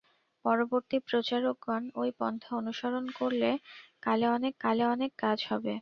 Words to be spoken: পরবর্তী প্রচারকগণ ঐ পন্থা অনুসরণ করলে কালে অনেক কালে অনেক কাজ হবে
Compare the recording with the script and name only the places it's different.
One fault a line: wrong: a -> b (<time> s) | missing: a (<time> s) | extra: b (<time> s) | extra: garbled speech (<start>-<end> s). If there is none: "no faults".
no faults